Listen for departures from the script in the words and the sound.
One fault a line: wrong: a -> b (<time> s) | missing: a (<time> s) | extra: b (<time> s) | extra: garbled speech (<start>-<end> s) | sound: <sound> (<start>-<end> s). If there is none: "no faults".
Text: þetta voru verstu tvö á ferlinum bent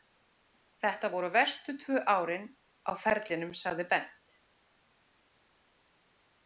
extra: árin (2.1 s)
extra: sagði (3.6 s)